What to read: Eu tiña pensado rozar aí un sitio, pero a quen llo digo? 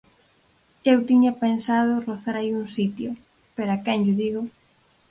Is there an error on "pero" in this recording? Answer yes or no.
no